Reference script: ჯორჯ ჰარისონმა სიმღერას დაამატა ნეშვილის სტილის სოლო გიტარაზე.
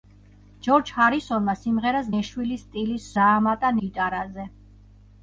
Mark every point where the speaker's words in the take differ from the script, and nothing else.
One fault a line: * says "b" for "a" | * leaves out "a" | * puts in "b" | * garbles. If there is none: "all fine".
* leaves out "დაამატა"
* says "დაამატა" for "სოლო"